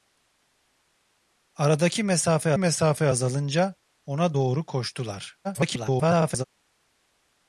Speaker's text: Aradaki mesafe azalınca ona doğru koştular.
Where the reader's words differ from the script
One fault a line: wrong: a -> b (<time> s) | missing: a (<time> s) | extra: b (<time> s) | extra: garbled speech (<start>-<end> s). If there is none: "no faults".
extra: mesafe (2.6 s)
extra: garbled speech (5.4-6.4 s)